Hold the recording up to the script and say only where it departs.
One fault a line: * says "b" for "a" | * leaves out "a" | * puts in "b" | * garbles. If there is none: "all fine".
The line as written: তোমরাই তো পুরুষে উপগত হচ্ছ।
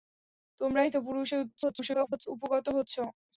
* garbles